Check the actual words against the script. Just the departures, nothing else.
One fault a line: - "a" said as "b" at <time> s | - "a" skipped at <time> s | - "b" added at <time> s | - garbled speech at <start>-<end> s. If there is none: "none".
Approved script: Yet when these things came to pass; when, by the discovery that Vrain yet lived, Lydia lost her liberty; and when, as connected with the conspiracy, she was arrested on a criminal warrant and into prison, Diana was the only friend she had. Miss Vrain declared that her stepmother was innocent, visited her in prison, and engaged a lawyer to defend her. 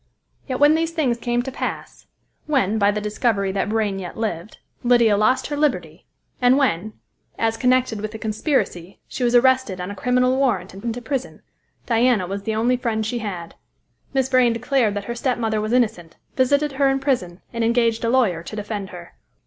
none